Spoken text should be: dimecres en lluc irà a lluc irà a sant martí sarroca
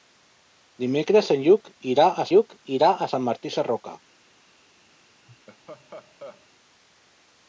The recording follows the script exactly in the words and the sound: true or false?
false